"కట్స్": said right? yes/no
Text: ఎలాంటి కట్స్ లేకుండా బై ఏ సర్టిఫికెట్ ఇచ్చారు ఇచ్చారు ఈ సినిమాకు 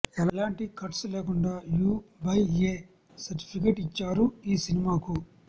yes